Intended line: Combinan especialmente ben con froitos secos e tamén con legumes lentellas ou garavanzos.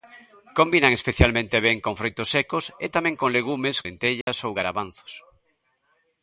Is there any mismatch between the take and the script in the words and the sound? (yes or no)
yes